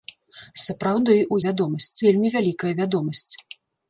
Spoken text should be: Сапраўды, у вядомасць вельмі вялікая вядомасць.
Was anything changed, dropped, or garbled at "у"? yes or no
no